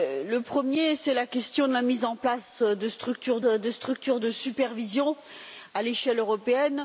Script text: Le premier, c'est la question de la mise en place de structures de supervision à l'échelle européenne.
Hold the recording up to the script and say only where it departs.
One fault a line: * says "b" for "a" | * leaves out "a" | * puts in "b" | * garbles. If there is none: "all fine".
* puts in "structures de"